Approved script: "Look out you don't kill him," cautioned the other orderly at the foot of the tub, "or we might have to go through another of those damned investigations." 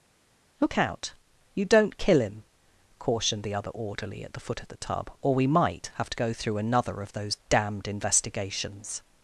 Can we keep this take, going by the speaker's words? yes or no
yes